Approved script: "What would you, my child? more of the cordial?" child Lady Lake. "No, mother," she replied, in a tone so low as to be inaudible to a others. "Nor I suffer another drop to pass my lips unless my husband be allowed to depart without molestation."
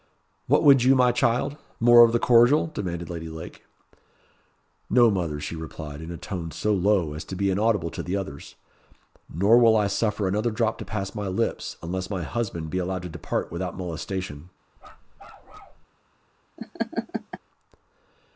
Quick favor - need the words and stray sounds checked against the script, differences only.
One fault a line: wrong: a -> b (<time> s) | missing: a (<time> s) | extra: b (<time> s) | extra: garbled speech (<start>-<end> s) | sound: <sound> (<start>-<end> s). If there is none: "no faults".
wrong: child -> demanded (2.6 s)
wrong: a -> the (8.0 s)
extra: will (9.6 s)
sound: bark (14.8-15.9 s)
sound: laugh (16.6-17.4 s)